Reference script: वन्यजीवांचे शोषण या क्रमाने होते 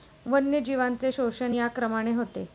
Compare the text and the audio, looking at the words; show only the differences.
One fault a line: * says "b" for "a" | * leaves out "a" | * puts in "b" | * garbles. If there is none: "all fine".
all fine